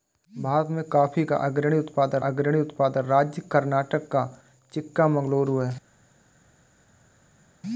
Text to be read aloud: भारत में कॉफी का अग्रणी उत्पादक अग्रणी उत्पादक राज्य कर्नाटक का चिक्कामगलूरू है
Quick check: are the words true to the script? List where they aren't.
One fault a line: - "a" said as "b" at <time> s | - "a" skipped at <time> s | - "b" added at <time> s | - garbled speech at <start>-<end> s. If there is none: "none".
none